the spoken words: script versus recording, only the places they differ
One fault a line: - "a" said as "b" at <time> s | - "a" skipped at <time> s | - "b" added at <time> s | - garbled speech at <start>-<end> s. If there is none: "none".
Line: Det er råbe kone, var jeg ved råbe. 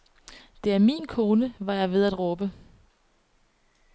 - "råbe" said as "min" at 0.8 s
- "at" added at 2.0 s